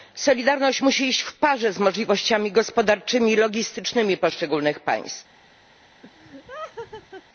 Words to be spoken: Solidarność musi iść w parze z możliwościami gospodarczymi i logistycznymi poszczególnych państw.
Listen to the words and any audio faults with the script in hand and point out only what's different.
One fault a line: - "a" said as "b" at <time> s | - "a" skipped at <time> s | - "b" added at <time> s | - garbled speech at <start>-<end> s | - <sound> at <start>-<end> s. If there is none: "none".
- laugh at 6.0-7.2 s